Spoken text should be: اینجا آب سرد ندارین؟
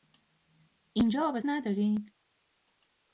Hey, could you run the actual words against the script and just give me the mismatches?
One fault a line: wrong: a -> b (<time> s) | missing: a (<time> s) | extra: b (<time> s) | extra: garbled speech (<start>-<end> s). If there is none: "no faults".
missing: سرد (1.4 s)